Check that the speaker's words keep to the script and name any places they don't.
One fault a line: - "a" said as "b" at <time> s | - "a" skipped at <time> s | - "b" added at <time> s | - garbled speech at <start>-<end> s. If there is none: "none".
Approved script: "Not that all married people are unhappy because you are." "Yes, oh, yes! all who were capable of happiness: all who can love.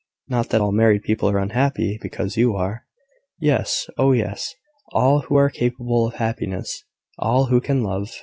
- "were" said as "are" at 5.4 s